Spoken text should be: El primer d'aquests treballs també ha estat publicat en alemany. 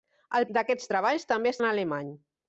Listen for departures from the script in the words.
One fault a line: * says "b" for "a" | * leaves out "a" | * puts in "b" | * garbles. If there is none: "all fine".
* leaves out "primer"
* leaves out "estat publicat"